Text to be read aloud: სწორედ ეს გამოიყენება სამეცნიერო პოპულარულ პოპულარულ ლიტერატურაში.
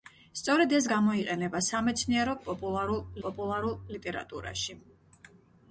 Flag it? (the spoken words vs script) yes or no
no